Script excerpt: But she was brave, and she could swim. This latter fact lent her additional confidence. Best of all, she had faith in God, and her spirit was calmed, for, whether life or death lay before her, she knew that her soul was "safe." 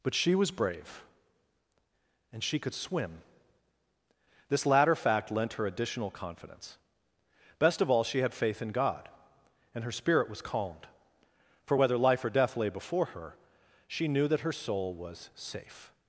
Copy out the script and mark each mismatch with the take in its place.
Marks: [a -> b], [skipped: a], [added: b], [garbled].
But she was brave, and she could swim. This latter fact lent her additional confidence. Best of all, she had faith in God, and her spirit was calmed, for, whether life or death lay before her, she knew that her soul was "safe."